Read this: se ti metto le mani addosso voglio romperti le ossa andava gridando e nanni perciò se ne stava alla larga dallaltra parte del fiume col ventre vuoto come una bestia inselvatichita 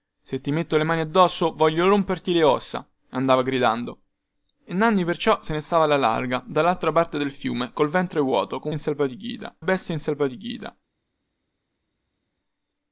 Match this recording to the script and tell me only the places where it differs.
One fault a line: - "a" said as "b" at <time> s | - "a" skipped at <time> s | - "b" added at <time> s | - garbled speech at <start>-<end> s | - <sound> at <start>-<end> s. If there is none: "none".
- "una" said as "inselvatichita" at 8.7 s